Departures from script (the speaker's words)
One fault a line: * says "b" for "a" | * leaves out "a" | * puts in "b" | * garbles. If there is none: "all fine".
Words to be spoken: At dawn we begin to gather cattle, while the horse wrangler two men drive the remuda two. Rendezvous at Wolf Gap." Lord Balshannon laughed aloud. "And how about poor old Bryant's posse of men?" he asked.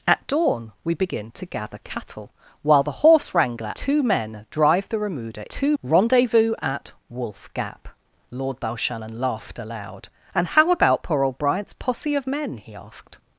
all fine